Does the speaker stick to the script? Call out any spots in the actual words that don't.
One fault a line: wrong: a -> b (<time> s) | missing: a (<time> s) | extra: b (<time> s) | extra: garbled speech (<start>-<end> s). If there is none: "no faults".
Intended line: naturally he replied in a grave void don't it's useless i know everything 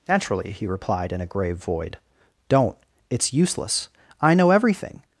no faults